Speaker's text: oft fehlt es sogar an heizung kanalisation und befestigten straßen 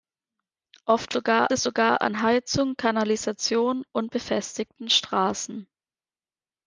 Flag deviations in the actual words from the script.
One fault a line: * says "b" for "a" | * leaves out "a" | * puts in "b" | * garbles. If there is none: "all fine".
* says "sogar" for "fehlt"